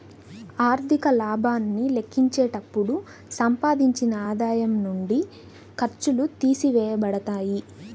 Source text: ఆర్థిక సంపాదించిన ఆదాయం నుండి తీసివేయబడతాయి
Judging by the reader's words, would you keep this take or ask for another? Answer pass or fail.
fail